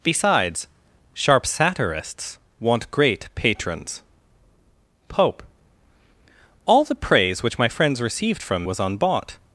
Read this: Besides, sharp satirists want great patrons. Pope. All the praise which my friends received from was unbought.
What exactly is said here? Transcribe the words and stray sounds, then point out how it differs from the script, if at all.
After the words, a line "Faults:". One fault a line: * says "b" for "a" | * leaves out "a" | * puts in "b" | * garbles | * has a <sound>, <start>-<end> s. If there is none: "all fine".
Besides, sharp satirists want great patrons. Pope. All the praise which my friends received from was unbought.
Faults:
all fine